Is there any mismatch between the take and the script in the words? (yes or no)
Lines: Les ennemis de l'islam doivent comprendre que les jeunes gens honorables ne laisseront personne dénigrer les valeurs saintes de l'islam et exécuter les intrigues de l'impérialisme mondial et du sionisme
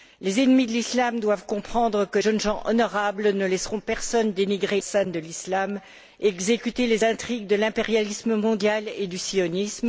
yes